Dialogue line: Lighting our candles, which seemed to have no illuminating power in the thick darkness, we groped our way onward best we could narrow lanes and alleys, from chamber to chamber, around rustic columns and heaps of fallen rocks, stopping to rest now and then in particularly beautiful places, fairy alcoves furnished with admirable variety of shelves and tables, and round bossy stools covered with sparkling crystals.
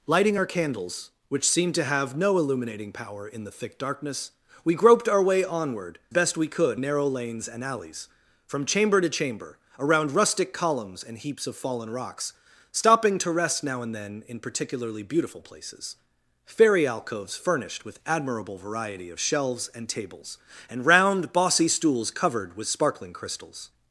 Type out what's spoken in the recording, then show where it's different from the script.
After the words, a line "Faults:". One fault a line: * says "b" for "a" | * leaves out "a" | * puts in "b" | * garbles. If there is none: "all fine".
Lighting our candles, which seemed to have no illuminating power in the thick darkness, we groped our way onward best we could narrow lanes and alleys, from chamber to chamber, around rustic columns and heaps of fallen rocks, stopping to rest now and then in particularly beautiful places, fairy alcoves furnished with admirable variety of shelves and tables, and round bossy stools covered with sparkling crystals.
Faults:
all fine